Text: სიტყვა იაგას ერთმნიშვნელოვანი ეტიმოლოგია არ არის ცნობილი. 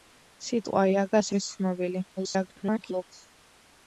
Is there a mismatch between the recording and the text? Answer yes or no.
yes